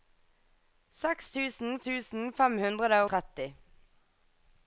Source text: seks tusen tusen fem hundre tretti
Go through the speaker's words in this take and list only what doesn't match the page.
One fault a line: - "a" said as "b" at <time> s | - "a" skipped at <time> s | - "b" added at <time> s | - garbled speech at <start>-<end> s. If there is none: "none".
none